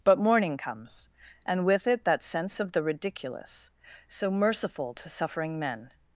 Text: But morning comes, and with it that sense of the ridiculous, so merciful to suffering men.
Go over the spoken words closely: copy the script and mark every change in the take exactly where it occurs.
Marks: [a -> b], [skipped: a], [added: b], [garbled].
But morning comes, and with it that sense of the ridiculous, so merciful to suffering men.